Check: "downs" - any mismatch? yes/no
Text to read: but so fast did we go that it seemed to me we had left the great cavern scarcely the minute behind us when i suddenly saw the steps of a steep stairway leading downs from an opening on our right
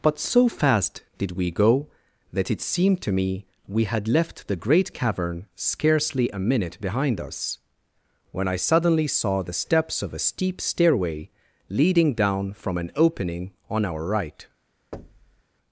yes